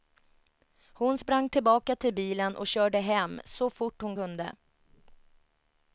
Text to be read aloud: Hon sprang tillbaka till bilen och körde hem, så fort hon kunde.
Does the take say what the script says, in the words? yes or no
yes